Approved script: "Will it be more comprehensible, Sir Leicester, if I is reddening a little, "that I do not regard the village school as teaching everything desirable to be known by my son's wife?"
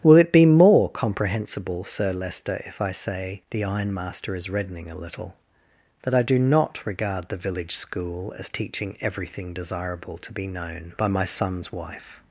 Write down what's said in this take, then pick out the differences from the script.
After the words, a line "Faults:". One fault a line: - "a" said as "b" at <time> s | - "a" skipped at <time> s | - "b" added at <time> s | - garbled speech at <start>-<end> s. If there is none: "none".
"Will it be more comprehensible, Sir Leicester, if I say," the ironmaster is reddening a little, "that I do not regard the village school as teaching everything desirable to be known by my son's wife?"
Faults:
- "say the ironmaster" added at 2.9 s